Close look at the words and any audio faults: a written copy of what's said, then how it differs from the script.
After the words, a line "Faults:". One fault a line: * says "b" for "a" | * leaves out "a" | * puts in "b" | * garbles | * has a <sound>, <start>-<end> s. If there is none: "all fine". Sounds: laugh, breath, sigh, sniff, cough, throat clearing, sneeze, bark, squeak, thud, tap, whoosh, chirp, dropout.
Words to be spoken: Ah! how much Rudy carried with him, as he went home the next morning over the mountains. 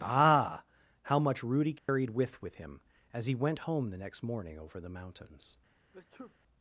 Ah! how much Rudy carried with with him, as he went home the next morning over the mountains.
Faults:
* has a dropout, 1.8-1.9 s
* puts in "with"
* has a sneeze, 5.9-6.3 s